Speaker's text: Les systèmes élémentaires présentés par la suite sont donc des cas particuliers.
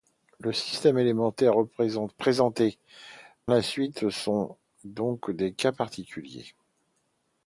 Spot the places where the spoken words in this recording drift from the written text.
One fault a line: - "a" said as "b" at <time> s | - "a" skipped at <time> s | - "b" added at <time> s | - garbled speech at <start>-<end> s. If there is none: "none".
- "par" skipped at 2.8 s